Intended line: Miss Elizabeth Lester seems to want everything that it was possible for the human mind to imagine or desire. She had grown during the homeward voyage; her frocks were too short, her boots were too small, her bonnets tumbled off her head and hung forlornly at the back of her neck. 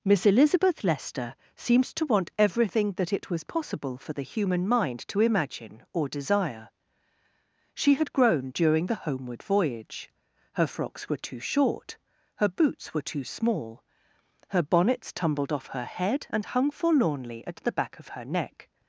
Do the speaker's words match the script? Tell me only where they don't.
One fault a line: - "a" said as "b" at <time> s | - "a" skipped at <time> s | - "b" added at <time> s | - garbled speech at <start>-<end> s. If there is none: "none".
none